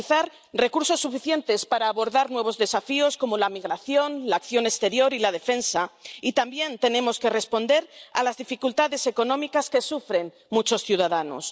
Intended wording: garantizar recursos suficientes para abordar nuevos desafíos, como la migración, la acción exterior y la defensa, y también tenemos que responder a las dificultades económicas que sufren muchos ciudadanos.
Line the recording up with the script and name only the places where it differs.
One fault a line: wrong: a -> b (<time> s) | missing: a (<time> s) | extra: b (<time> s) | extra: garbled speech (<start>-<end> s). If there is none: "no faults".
no faults